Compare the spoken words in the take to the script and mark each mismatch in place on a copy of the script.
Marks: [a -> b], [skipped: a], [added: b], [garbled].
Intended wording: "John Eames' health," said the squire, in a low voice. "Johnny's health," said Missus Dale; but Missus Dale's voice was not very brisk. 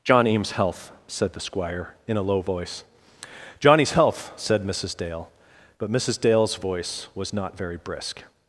"John Eames' health," said the squire, in a low voice. "Johnny's health," said Missus Dale; but Missus Dale's voice was not very brisk.